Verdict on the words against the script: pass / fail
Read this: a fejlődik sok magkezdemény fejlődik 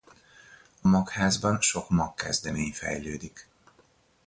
fail